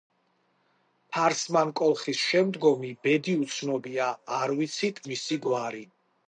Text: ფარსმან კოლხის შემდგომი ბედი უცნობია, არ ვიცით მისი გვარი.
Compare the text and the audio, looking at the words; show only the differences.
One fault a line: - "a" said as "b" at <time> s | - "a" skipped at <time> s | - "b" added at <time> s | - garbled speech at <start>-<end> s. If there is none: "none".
none